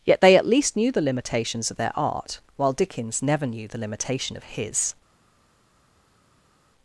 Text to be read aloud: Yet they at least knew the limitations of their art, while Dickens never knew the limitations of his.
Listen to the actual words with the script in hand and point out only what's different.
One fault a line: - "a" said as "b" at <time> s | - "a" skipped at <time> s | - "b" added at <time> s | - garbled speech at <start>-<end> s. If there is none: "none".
- "limitations" said as "limitation" at 3.8 s